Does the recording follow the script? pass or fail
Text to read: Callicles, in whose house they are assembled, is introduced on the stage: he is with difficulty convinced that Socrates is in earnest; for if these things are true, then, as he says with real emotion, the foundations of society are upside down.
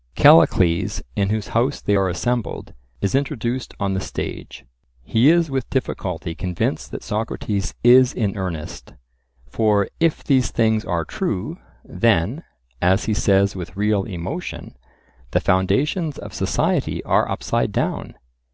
pass